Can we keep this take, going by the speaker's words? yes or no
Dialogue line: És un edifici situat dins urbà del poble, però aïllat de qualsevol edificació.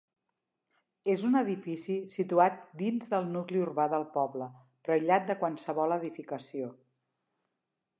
no